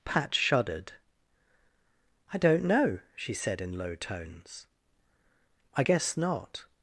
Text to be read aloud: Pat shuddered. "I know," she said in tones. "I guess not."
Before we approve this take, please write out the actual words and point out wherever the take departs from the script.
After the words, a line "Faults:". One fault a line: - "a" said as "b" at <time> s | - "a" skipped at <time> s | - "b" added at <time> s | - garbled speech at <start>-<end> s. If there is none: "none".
Pat shuddered. "I don't know," she said in low tones. "I guess not."
Faults:
- "don't" added at 2.4 s
- "low" added at 3.8 s